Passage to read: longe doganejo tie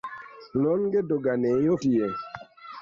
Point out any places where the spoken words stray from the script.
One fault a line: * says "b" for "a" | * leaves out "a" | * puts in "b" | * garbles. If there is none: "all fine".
all fine